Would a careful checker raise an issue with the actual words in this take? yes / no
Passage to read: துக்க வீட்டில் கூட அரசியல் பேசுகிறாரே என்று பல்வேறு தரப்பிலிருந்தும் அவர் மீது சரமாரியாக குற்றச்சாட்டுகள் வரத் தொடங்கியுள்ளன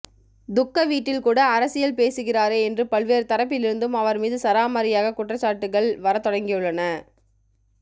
no